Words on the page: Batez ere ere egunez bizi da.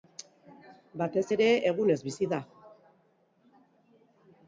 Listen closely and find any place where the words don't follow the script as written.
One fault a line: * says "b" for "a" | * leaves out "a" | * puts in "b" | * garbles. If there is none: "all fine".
* leaves out "ere"